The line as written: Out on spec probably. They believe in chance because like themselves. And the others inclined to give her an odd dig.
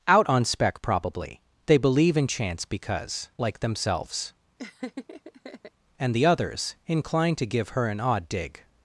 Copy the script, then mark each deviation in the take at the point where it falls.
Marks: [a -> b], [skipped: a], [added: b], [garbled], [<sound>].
Out on spec probably. They believe in chance because like themselves. [laugh] And the others inclined to give her an odd dig.